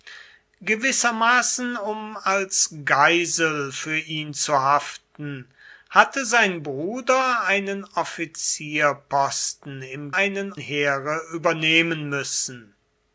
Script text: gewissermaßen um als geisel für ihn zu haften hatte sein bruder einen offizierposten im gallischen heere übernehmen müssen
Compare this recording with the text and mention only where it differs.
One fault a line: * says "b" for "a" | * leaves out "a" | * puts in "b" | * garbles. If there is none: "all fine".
* says "einen" for "gallischen"